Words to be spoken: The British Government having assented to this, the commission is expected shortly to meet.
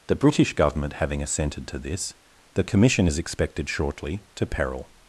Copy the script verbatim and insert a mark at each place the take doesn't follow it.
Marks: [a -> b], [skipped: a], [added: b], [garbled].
The British Government having assented to this, the commission is expected shortly to [meet. -> peril]